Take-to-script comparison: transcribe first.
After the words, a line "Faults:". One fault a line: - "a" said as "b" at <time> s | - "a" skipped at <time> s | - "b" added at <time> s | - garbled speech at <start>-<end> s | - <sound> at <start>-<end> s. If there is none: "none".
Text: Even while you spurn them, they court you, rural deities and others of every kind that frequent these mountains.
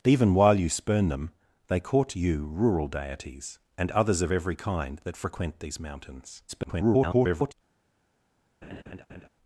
Even while you spurn them, they court you, rural deities and others of every kind that frequent these mountains. [garbled]
Faults:
- garbled speech at 6.5-7.5 s
- laugh at 8.6-9.3 s